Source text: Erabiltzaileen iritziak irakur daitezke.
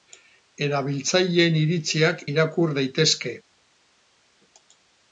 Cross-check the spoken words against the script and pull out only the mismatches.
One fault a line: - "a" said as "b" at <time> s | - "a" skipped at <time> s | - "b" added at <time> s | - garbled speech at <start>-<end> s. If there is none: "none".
none